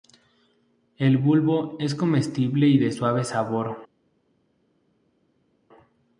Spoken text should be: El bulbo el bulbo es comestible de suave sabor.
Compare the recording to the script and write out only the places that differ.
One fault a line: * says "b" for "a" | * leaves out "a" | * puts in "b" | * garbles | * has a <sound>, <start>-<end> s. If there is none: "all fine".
* leaves out "el bulbo"
* puts in "y"